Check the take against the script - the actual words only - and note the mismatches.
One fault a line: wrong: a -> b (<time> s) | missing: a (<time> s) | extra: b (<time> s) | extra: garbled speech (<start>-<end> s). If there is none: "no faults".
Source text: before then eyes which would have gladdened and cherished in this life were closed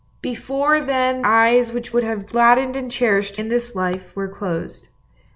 no faults